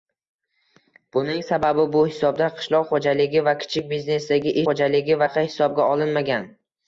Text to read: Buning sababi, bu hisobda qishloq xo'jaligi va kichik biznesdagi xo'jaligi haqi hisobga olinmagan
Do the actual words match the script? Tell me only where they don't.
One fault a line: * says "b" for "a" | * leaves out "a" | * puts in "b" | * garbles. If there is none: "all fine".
all fine